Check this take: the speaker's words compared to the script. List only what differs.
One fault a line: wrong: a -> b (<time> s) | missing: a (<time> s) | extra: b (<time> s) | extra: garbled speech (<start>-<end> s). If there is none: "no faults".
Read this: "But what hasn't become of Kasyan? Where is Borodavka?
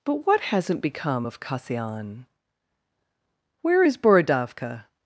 no faults